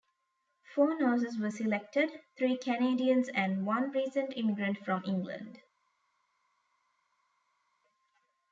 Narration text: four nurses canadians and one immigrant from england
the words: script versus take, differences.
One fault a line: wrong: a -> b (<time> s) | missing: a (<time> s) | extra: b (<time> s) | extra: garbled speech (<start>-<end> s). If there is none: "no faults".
extra: were selected three (1.4 s)
extra: recent (3.9 s)